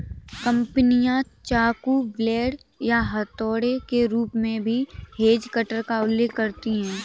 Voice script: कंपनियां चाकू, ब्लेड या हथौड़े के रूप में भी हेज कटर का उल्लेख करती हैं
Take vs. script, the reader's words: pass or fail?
pass